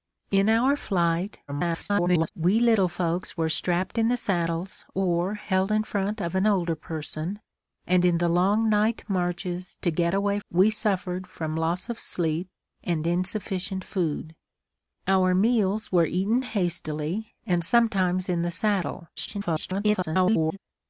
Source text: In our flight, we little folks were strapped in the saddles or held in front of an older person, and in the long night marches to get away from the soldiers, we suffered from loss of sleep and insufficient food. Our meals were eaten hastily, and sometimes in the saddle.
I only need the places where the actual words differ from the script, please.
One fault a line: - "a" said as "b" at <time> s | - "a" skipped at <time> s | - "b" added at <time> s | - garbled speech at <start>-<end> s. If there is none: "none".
- garbled speech at 1.5-2.3 s
- "from the soldiers" skipped at 10.4 s
- garbled speech at 19.2-20.6 s